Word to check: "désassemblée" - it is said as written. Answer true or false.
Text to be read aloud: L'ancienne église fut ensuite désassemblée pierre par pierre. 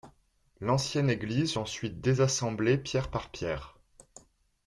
true